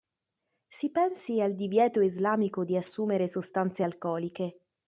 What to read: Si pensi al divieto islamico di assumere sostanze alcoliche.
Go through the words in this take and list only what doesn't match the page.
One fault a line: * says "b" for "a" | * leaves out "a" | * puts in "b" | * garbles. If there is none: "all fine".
all fine